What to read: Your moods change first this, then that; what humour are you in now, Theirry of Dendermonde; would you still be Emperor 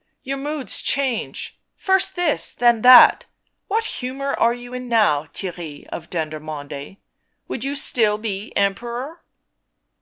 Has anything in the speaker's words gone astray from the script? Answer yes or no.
no